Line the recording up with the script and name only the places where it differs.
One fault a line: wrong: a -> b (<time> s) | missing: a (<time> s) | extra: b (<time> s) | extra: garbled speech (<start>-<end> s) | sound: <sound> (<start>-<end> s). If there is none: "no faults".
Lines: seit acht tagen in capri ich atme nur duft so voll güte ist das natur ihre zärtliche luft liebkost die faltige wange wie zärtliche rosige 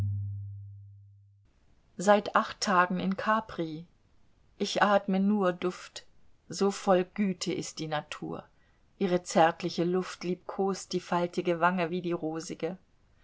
wrong: das -> die (7.8 s)
wrong: zärtliche -> die (12.0 s)